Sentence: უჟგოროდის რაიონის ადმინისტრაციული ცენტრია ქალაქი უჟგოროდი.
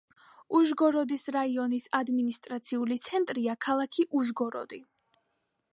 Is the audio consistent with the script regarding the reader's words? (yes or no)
yes